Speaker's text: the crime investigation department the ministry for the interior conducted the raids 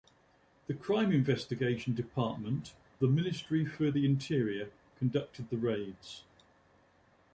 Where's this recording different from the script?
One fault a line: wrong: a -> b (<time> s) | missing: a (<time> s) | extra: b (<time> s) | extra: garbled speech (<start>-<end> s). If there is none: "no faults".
no faults